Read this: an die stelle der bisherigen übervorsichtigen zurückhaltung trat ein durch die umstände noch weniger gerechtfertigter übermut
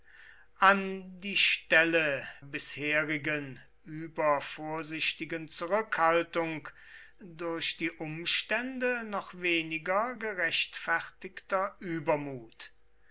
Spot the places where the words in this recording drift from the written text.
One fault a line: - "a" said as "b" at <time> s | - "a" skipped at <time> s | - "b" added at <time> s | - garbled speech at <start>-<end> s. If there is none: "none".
- "der" skipped at 2.3 s
- "trat ein" skipped at 6.7 s